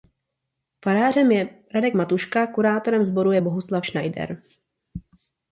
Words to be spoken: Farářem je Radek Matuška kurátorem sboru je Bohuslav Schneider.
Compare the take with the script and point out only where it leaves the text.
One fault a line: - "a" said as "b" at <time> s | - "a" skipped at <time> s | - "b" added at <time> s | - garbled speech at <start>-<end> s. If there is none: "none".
none